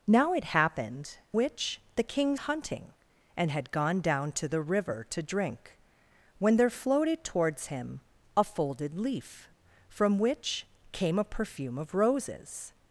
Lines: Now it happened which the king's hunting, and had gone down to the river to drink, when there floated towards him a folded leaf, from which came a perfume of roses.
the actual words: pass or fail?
pass